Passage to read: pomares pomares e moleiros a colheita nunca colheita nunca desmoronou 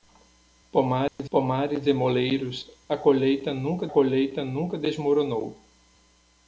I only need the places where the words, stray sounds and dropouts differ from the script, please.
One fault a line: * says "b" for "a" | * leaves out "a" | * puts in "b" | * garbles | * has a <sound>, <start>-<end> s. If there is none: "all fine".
* has a dropout, 1.1-1.2 s